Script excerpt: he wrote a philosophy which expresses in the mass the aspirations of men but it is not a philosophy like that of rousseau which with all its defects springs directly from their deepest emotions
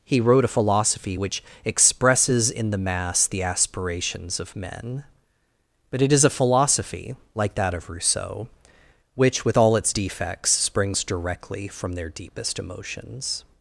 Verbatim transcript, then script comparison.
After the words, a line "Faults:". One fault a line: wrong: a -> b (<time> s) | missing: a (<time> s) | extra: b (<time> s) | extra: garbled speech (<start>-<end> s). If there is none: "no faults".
he wrote a philosophy which expresses in the mass the aspirations of men but it is a philosophy like that of rousseau which with all its defects springs directly from their deepest emotions
Faults:
missing: not (6.2 s)